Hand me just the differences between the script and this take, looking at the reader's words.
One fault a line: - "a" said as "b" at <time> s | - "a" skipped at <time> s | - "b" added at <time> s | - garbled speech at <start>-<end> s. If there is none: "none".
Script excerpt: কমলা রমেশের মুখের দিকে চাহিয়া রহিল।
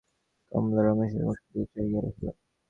none